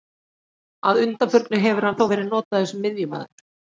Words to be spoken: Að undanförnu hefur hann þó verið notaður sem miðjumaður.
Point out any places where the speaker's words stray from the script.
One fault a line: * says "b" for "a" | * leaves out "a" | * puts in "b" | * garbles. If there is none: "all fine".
all fine